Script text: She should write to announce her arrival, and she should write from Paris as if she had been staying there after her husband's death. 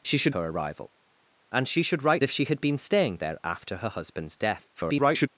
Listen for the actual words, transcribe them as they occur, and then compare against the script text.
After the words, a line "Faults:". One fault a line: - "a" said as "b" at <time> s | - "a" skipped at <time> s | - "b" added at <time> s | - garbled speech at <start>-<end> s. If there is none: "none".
She should her arrival, and she should write if she had been staying there after her husband's death. [garbled]
Faults:
- "write to announce" skipped at 0.3 s
- "from Paris as" skipped at 2.2 s
- garbled speech at 4.8-5.3 s